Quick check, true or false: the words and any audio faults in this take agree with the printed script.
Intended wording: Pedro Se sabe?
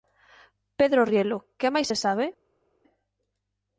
false